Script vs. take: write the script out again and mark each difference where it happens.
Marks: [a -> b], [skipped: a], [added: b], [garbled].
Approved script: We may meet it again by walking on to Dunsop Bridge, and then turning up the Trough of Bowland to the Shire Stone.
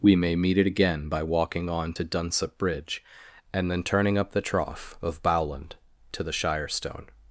We may meet it again by walking on to Dunsop Bridge, and then turning up the Trough of Bowland to the Shire Stone.